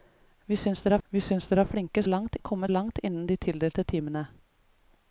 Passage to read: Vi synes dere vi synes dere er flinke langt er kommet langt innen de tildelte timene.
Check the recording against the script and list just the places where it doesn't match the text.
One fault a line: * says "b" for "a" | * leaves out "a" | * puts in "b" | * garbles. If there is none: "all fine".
all fine